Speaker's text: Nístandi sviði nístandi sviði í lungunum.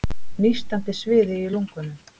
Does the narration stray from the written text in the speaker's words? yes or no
yes